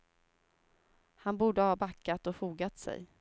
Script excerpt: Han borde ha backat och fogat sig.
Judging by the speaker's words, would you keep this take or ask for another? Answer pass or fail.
pass